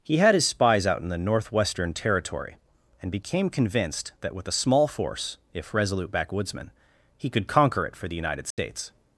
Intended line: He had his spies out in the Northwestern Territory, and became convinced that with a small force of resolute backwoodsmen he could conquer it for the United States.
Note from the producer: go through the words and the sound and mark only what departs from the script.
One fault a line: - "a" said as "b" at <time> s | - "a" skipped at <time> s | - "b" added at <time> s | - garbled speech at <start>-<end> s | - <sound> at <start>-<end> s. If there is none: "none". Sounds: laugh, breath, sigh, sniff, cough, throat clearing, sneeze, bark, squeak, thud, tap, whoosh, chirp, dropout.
- "of" said as "if" at 5.5 s
- dropout at 8.5-8.6 s